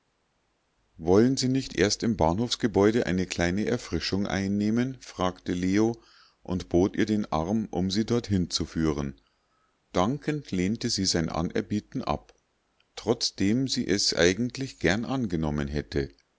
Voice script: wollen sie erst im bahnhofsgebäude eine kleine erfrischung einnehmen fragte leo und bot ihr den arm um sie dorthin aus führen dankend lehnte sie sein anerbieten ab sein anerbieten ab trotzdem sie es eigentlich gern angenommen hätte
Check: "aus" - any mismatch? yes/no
yes